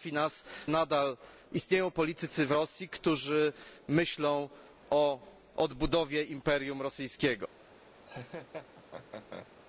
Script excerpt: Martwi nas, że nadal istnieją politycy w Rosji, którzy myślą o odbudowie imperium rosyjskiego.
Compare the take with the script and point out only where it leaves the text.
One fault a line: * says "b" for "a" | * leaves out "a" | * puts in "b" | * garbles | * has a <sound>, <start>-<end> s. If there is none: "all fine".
* leaves out "że"
* has a laugh, 8.0-9.5 s